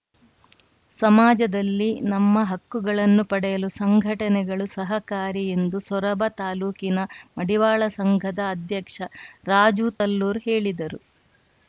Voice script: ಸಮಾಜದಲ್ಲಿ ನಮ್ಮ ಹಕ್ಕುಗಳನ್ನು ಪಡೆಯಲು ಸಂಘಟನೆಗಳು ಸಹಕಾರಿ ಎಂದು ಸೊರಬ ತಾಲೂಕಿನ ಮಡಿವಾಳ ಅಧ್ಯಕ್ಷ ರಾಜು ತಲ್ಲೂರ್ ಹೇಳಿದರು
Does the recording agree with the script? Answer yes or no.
no